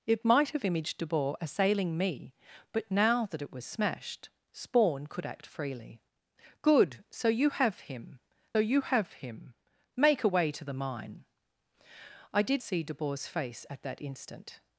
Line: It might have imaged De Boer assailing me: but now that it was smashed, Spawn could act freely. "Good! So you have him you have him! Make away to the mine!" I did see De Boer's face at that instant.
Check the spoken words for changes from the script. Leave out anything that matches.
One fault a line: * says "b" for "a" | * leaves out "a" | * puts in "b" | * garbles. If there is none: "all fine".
all fine